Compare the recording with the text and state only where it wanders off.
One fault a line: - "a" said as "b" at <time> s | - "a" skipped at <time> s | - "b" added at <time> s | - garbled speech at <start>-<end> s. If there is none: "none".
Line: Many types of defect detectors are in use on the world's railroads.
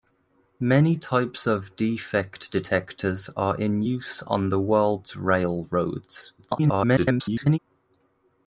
- garbled speech at 6.4-7.6 s